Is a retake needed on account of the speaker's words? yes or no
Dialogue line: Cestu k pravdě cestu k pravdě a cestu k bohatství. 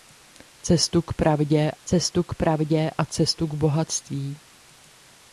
no